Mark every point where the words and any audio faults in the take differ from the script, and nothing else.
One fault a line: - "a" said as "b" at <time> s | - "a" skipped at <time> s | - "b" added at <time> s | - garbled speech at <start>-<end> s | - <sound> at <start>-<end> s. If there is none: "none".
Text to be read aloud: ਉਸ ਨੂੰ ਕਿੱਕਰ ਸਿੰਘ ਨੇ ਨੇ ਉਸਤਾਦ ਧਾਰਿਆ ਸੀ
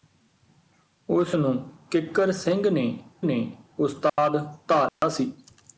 - dropout at 4.1-4.2 s
- dropout at 4.9-5.0 s